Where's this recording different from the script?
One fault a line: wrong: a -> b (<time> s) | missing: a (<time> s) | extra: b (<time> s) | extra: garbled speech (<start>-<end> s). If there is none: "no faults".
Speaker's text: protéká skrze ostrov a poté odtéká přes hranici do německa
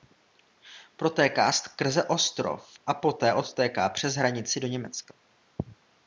no faults